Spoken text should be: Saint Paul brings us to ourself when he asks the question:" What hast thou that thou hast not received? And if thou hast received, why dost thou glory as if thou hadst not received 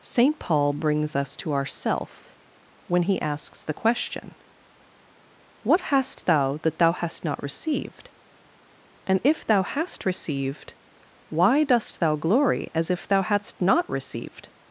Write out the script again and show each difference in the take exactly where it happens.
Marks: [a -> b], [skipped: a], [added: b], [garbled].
Saint Paul brings us to ourself when he asks the question:" What hast thou that thou hast not received? And if thou hast received, why dost thou glory as if thou hadst not received